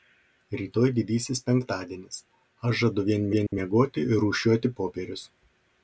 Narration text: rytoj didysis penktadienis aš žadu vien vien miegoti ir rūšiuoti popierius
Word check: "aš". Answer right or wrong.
right